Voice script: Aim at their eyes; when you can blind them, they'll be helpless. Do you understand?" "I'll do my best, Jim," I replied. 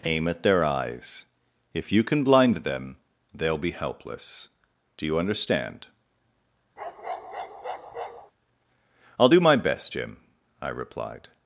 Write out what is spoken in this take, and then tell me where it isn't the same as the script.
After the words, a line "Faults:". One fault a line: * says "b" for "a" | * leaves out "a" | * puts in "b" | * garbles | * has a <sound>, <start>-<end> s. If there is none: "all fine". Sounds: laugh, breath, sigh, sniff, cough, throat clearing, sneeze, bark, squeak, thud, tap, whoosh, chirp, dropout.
Aim at their eyes; if you can blind them, they'll be helpless. Do you understand?" "I'll do my best, Jim," I replied.
Faults:
* says "if" for "when"
* has a bark, 6.8-8.3 s